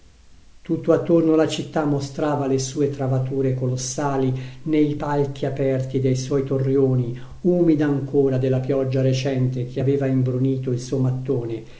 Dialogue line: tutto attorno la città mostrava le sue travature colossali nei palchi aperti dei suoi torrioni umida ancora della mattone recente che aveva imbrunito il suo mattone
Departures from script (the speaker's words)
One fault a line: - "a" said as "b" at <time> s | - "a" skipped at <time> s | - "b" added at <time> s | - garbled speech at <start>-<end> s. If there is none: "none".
- "mattone" said as "pioggia" at 8.6 s